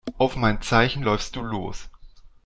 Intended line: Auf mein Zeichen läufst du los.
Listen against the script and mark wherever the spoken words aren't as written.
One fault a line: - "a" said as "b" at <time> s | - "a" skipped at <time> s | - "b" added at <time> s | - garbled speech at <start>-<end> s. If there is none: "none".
none